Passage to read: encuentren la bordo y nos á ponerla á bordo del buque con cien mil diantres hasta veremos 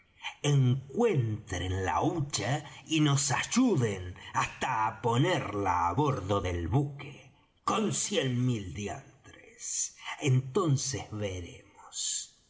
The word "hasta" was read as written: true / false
false